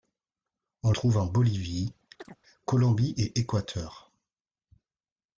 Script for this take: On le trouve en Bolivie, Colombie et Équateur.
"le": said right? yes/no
no